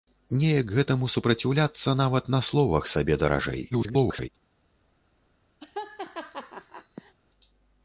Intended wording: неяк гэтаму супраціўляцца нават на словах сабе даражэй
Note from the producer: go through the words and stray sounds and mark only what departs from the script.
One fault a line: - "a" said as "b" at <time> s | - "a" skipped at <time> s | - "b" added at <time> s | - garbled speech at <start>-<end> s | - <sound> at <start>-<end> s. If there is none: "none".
- garbled speech at 3.7-4.3 s
- laugh at 5.6-7.1 s